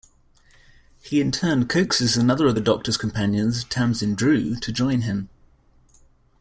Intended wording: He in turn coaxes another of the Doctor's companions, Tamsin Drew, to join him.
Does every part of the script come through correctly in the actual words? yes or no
yes